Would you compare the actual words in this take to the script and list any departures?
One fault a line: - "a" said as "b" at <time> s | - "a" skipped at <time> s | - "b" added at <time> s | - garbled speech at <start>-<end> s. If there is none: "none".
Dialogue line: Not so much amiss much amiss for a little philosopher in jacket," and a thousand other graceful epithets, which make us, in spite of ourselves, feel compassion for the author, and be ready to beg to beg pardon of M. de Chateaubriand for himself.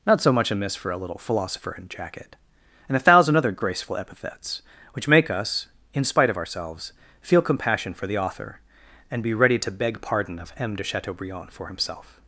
- "much amiss" skipped at 0.8 s
- "to beg" skipped at 10.0 s